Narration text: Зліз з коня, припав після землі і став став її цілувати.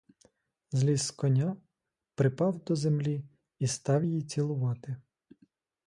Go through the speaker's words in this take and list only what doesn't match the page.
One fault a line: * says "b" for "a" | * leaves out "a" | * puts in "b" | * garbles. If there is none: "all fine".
* says "до" for "після"
* leaves out "став"